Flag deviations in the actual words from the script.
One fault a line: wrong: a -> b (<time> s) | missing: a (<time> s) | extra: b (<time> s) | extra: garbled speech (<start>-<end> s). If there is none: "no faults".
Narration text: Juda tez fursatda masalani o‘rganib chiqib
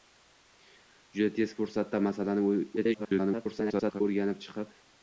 extra: garbled speech (2.8-4.0 s)